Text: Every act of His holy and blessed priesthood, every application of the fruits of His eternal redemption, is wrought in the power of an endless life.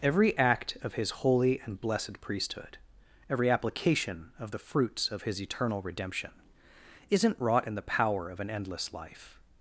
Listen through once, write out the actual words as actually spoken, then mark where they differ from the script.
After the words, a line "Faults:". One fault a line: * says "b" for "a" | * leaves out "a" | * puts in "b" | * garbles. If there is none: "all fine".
Every act of His holy and blessed priesthood, every application of the fruits of His eternal redemption, isn't wrought in the power of an endless life.
Faults:
* says "isn't" for "is"